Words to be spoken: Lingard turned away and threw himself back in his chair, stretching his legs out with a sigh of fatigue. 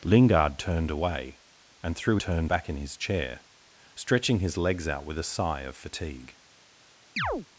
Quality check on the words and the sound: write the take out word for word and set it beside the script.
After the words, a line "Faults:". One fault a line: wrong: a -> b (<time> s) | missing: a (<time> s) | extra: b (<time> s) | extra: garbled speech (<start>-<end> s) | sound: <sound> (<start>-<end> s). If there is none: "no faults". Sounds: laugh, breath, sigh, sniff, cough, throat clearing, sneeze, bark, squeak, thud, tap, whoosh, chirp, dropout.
Lingard turned away and threw turned back in his chair, stretching his legs out with a sigh of fatigue.
Faults:
wrong: himself -> turned (2.2 s)
sound: chirp (7.2-7.5 s)